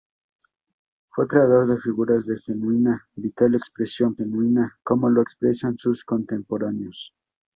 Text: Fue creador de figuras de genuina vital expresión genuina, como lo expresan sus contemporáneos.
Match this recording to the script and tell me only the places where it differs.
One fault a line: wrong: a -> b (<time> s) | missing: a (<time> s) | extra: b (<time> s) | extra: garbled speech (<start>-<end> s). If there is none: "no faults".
no faults